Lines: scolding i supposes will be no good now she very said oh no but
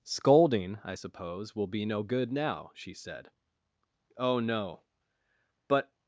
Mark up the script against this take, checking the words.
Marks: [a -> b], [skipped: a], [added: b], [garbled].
scolding i [supposes -> suppose] will be no good now she [skipped: very] said oh no but